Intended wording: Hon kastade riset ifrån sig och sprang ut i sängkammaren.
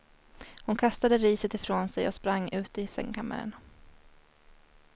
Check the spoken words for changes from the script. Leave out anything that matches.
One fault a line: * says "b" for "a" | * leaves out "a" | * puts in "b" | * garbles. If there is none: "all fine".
all fine